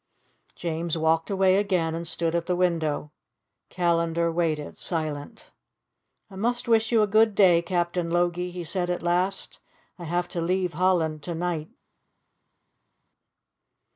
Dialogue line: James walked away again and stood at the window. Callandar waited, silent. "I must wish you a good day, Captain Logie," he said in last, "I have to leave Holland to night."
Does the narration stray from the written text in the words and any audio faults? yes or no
yes